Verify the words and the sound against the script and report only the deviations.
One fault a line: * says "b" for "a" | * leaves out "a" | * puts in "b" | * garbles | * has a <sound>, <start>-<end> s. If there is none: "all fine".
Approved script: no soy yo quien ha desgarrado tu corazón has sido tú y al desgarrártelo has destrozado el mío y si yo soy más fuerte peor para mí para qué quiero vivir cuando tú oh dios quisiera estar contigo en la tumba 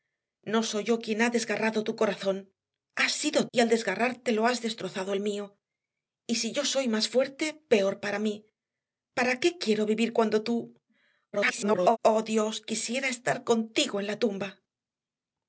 * leaves out "tú"
* garbles